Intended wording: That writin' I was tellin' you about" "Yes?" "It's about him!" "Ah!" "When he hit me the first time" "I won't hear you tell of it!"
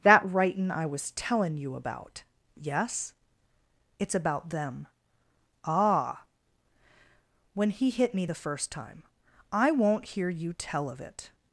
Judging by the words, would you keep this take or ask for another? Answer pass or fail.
fail